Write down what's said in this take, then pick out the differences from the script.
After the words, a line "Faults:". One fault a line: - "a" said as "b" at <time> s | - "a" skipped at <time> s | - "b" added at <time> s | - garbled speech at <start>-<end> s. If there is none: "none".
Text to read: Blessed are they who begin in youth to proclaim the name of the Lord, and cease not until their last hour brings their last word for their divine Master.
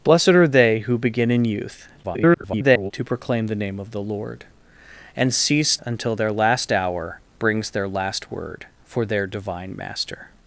Blessed are they who begin in youth [garbled] to proclaim the name of the Lord, and cease until their last hour brings their last word for their divine Master.
Faults:
- garbled speech at 2.0-2.9 s
- "not" skipped at 5.8 s